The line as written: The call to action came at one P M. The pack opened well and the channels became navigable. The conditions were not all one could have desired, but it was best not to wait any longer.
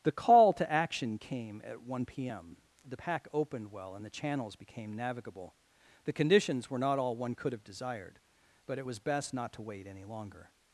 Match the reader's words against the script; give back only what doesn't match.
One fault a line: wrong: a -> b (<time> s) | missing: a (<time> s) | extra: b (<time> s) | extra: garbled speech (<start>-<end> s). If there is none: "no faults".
no faults